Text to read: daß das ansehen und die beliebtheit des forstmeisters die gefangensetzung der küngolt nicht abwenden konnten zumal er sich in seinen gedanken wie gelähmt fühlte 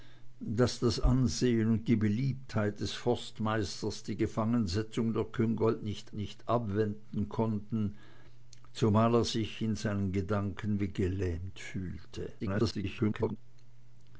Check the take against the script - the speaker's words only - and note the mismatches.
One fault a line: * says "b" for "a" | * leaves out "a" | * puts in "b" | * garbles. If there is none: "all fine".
* puts in "nicht"
* garbles